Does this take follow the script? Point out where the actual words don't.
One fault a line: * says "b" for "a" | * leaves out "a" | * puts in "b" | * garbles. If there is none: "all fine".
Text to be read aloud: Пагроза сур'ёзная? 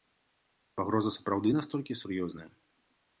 * puts in "сапраўды настолькі"